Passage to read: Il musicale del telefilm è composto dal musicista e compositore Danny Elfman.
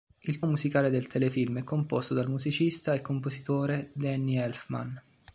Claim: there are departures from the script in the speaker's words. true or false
false